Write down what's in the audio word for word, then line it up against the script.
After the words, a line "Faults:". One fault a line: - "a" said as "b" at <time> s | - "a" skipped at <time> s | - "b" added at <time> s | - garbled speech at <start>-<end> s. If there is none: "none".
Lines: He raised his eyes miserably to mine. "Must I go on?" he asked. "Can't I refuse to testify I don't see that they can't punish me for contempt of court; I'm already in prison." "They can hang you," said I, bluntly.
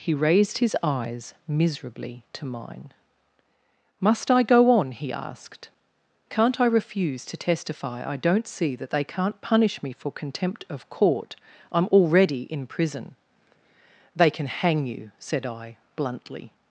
He raised his eyes miserably to mine. "Must I go on?" he asked. "Can't I refuse to testify I don't see that they can't punish me for contempt of court; I'm already in prison." "They can hang you," said I, bluntly.
Faults:
none